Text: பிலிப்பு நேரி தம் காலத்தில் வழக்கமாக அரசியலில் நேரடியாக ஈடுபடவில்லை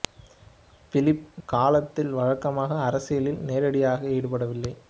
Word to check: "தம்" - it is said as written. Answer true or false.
false